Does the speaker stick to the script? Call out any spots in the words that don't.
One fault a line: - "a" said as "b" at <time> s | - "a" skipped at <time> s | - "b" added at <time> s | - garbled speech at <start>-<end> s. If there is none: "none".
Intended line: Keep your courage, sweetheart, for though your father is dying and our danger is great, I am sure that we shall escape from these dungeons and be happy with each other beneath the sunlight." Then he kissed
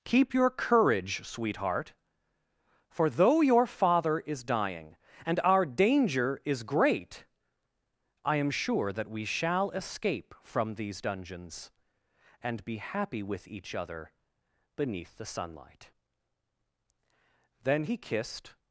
none